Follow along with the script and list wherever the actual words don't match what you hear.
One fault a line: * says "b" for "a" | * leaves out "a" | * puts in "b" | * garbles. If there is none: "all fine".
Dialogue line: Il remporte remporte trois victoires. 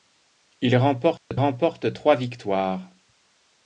all fine